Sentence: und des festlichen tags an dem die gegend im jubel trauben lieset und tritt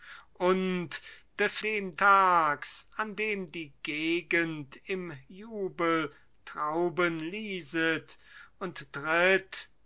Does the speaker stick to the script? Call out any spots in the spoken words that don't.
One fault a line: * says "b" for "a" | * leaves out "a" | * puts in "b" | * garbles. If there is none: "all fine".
* says "dem" for "festlichen"